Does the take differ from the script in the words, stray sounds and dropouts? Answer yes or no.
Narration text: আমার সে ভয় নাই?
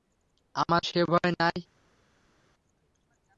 no